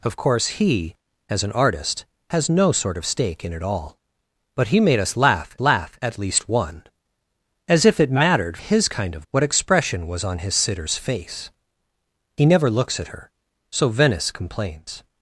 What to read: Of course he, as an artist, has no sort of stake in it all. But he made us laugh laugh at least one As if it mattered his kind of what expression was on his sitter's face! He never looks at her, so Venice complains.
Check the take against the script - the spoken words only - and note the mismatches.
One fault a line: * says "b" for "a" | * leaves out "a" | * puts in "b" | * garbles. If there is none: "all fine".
all fine